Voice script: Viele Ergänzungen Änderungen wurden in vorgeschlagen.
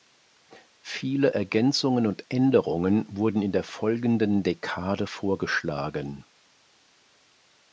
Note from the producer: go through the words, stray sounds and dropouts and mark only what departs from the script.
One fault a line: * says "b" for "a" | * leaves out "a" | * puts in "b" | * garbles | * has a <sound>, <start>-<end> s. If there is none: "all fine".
* puts in "und"
* puts in "der folgenden Dekade"